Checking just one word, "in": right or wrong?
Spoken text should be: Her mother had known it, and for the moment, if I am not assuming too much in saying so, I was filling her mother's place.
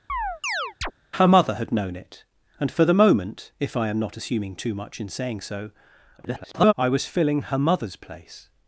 right